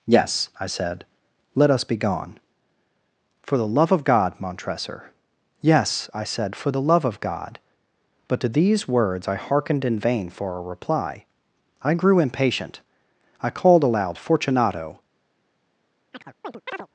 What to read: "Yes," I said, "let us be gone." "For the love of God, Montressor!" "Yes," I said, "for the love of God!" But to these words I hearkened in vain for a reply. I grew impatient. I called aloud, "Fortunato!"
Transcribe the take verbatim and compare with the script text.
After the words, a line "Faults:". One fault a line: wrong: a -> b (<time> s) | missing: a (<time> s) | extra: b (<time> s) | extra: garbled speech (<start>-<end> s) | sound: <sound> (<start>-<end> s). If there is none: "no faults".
"Yes," I said, "let us be gone." "For the love of God, Montressor!" "Yes," I said, "for the love of God!" But to these words I hearkened in vain for a reply. I grew impatient. I called aloud, "Fortunato!"
Faults:
sound: chirp (16.1-16.9 s)